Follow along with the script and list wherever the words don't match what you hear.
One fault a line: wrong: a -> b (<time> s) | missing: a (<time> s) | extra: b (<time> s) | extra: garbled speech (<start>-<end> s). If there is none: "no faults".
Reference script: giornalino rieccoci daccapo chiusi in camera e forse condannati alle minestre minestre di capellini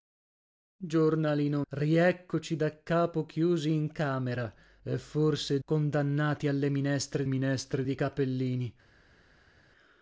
no faults